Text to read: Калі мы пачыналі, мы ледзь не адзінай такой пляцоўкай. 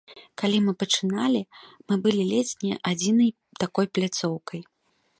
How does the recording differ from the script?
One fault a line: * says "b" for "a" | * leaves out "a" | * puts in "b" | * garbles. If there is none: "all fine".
* puts in "былі"